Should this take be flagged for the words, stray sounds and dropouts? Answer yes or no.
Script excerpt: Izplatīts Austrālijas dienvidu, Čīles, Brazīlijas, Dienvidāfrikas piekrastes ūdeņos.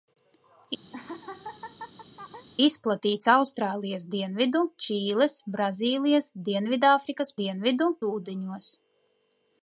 yes